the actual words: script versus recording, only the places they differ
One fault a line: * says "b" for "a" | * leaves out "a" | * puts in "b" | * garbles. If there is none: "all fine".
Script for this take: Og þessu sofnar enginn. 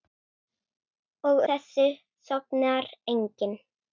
all fine